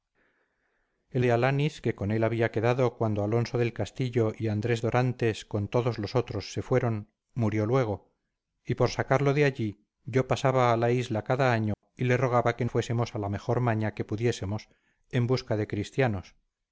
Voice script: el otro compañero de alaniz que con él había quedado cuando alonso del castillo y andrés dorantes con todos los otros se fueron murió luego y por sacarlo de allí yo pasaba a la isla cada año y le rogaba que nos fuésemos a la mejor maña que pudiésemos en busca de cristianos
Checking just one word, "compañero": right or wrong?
wrong